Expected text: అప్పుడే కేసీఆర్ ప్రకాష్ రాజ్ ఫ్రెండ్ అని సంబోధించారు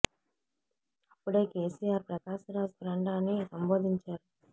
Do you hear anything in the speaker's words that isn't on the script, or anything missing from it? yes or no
no